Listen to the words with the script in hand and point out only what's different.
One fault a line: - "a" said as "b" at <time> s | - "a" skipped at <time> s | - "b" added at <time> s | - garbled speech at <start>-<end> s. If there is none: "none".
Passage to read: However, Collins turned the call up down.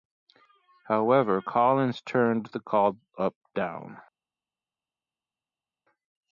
none